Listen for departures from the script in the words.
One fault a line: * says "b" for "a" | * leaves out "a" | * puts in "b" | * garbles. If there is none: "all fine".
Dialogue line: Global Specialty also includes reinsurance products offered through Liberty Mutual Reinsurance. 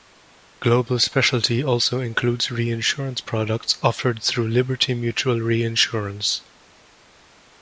all fine